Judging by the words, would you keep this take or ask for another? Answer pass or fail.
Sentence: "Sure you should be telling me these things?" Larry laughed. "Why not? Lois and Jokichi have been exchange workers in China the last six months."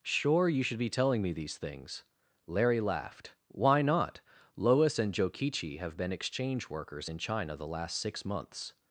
pass